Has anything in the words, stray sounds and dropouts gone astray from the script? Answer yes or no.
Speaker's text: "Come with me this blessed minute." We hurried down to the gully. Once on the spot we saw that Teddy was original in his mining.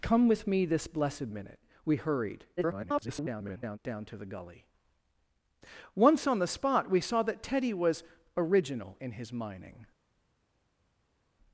yes